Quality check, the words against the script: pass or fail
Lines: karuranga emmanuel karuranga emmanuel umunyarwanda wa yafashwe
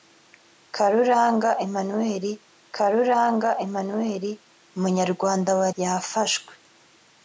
pass